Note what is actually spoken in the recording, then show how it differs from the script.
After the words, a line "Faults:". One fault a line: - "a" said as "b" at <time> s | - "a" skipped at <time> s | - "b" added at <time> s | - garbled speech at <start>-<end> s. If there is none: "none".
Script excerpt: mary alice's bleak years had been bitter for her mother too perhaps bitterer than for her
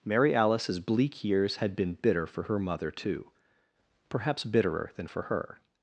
mary alice's bleak years had been bitter for her mother too perhaps bitterer than for her
Faults:
none